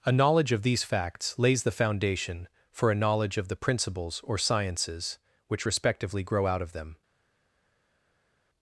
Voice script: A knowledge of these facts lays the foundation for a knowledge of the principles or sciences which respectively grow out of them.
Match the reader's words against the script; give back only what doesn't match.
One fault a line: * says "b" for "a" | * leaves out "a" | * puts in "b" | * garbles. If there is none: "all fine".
all fine